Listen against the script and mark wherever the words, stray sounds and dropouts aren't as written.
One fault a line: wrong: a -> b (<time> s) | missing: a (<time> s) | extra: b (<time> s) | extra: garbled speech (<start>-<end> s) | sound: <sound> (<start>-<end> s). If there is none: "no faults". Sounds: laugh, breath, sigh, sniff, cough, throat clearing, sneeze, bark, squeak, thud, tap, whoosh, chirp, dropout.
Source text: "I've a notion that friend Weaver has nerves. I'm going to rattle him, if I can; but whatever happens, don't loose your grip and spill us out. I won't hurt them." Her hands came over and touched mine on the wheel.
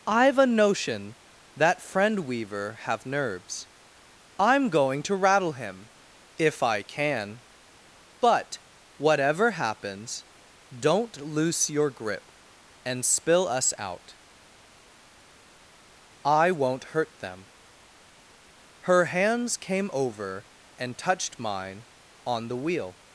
wrong: has -> have (2.9 s)